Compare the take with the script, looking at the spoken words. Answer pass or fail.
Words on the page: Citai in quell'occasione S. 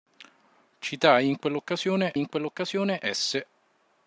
fail